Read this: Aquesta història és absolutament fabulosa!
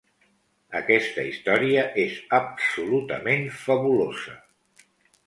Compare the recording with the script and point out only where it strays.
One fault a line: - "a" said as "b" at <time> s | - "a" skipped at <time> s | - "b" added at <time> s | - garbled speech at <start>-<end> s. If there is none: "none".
none